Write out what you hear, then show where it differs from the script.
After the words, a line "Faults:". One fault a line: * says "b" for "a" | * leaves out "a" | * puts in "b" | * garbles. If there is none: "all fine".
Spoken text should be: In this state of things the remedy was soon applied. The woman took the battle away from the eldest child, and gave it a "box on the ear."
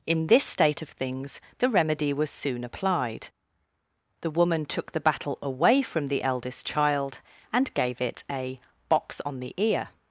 In this state of things the remedy was soon applied. The woman took the battle away from the eldest child, and gave it a "box on the ear."
Faults:
all fine